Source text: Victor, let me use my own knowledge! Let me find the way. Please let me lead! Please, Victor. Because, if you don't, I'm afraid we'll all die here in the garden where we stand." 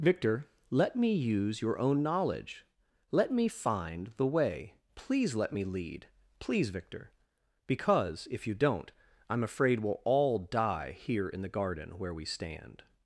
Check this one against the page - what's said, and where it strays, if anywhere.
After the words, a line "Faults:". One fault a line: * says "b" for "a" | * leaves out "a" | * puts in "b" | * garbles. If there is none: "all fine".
Victor, let me use your own knowledge! Let me find the way. Please let me lead! Please, Victor. Because, if you don't, I'm afraid we'll all die here in the garden where we stand."
Faults:
* says "your" for "my"